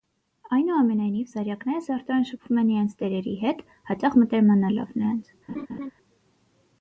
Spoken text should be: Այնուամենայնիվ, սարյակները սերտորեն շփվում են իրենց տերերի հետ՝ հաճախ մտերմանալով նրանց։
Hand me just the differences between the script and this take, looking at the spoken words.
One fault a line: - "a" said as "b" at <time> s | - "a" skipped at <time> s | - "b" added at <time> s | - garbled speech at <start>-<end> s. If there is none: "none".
none